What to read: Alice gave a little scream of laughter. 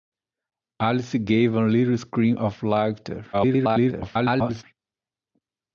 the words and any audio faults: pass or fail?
fail